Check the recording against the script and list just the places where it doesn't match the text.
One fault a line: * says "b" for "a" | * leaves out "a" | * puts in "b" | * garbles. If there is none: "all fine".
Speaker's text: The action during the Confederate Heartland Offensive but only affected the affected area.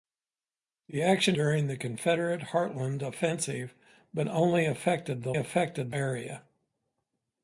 all fine